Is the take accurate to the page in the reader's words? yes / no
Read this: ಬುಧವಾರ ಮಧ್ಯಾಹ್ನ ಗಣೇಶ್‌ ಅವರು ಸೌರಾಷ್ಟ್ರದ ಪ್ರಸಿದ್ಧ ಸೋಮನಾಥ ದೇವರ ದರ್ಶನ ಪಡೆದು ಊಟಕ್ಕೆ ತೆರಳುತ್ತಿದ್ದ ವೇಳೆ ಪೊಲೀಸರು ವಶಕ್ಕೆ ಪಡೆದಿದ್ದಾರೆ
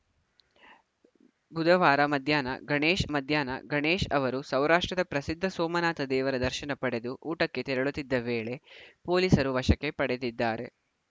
no